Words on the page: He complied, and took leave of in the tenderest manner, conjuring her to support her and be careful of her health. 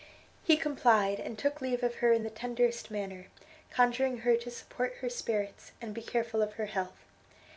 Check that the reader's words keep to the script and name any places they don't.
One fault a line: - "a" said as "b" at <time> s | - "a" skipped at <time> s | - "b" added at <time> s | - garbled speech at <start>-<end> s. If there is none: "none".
- "her" added at 2.0 s
- "spirits" added at 5.1 s